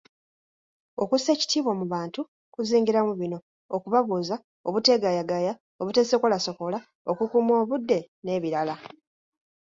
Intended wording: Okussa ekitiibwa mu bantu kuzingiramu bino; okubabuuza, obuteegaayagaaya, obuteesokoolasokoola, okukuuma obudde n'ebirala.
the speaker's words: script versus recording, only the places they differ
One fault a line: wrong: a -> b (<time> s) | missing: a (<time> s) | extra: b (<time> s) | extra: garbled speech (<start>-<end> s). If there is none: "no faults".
no faults